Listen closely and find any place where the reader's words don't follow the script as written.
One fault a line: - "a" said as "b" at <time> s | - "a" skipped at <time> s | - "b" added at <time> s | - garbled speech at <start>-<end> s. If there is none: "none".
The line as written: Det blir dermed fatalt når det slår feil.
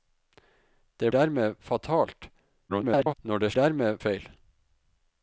- "blir" skipped at 1.1 s
- garbled speech at 2.7-3.1 s
- "slår" said as "dermed" at 3.5 s